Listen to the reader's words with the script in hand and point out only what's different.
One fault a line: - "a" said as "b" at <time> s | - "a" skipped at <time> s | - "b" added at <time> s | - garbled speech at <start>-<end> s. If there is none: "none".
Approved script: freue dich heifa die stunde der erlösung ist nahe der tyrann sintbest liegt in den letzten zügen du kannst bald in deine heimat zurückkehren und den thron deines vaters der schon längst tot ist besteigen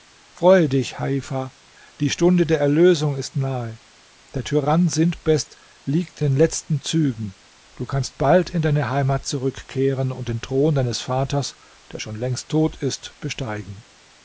- "in" skipped at 6.2 s